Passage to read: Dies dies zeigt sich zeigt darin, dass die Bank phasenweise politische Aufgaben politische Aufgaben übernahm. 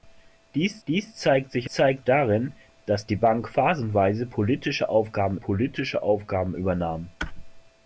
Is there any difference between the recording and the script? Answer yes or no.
no